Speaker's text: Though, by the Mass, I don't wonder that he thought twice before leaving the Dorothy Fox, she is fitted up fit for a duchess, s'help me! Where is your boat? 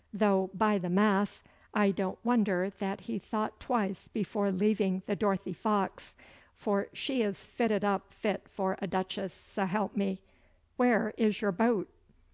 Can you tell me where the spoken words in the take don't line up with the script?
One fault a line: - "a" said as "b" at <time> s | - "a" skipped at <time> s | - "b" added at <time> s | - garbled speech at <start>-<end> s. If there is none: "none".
- "for" added at 6.5 s